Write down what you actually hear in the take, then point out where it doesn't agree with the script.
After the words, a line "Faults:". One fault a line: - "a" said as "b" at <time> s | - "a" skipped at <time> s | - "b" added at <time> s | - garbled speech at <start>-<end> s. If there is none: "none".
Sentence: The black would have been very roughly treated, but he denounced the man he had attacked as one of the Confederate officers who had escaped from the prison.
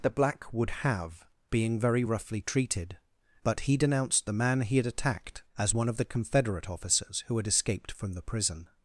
The black would have being very roughly treated, but he denounced the man he had attacked as one of the Confederate officers who had escaped from the prison.
Faults:
- "been" said as "being" at 1.5 s